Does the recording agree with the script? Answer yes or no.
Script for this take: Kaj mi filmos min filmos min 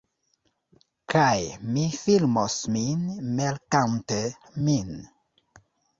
no